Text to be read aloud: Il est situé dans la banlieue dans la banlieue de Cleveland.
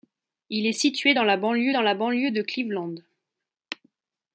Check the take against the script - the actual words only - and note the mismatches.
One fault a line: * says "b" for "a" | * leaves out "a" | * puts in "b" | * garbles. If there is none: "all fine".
all fine